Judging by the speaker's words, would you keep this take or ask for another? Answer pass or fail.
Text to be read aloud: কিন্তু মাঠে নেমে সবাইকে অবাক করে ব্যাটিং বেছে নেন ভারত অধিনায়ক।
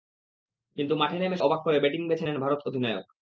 fail